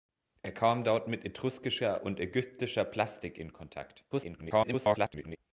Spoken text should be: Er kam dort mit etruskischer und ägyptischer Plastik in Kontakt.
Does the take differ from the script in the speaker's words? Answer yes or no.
yes